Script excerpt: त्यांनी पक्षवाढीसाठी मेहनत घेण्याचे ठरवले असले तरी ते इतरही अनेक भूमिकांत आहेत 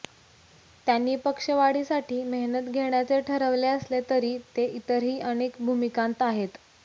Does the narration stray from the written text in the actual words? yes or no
no